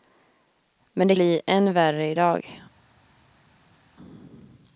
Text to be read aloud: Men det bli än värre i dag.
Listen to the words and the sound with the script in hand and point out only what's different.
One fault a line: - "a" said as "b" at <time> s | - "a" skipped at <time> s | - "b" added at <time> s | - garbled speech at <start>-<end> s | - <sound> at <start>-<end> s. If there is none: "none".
none